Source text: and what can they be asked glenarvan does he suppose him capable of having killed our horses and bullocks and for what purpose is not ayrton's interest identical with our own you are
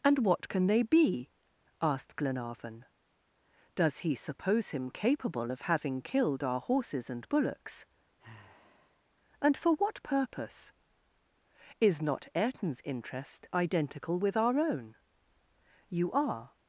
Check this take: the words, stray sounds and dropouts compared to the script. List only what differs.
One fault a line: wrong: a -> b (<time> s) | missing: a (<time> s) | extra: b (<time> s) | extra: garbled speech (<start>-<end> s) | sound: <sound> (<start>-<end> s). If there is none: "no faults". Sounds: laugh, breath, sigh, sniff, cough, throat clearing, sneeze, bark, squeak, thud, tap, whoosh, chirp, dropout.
sound: sigh (8.2-9.0 s)